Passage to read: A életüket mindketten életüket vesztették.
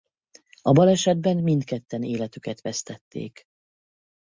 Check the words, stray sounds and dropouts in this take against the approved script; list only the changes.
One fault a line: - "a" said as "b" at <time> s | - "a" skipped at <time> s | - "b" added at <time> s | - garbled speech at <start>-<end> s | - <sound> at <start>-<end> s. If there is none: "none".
- "életüket" said as "balesetben" at 0.7 s